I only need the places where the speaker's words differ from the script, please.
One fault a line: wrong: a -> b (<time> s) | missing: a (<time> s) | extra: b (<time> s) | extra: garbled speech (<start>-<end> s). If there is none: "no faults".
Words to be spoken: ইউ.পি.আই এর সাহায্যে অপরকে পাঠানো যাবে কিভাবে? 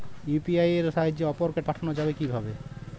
no faults